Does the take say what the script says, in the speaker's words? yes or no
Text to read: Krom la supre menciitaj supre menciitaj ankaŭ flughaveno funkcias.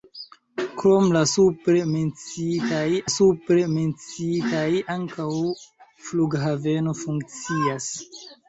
yes